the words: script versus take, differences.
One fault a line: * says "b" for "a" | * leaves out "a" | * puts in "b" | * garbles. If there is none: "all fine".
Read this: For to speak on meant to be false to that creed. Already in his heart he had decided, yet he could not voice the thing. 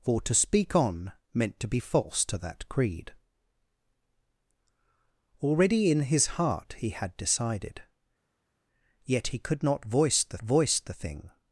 * puts in "voice the"